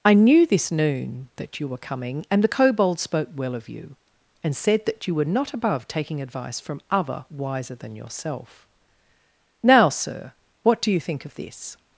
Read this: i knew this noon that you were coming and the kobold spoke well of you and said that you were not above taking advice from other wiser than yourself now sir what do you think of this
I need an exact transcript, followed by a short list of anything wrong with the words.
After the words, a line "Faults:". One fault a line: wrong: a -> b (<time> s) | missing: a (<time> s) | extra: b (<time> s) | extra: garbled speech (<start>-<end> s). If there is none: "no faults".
i knew this noon that you were coming and the kobold spoke well of you and said that you were not above taking advice from other wiser than yourself now sir what do you think of this
Faults:
no faults